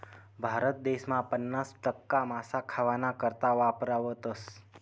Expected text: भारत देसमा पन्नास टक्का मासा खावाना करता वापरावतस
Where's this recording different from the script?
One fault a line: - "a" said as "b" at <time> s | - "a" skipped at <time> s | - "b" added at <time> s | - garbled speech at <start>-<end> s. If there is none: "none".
none